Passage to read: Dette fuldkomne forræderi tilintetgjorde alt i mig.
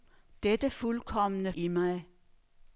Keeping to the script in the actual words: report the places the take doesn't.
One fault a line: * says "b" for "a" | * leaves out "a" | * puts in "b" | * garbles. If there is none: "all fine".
* leaves out "forræderi tilintetgjorde alt"